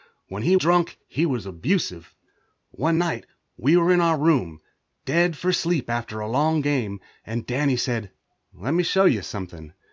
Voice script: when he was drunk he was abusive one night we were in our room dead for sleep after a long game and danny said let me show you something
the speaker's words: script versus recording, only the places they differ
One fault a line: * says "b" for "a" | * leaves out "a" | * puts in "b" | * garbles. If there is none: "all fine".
* leaves out "was"